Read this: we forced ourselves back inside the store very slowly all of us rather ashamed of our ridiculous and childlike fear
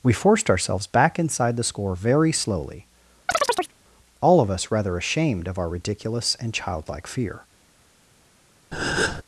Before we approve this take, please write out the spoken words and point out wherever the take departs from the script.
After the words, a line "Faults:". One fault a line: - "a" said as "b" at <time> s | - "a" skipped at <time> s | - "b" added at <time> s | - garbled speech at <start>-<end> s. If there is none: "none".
we forced ourselves back inside the score very slowly all of us rather ashamed of our ridiculous and childlike fear
Faults:
- "store" said as "score" at 1.6 s